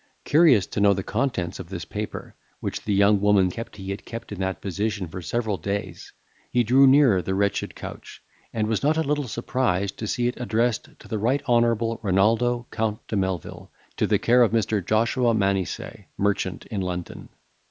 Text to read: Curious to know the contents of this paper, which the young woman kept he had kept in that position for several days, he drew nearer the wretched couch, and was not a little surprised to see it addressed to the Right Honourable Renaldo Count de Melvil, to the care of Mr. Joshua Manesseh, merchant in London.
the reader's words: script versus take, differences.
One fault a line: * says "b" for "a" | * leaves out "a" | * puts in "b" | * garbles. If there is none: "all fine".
all fine